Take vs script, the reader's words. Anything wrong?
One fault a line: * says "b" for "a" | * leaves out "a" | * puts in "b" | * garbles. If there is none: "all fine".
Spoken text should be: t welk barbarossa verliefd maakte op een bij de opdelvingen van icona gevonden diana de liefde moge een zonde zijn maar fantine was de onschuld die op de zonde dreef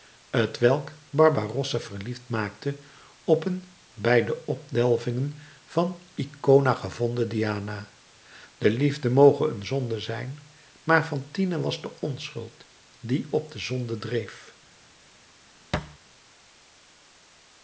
all fine